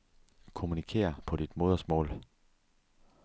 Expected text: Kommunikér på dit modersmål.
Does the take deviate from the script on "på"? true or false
false